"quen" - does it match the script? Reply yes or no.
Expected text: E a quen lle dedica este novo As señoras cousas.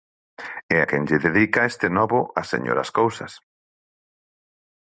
yes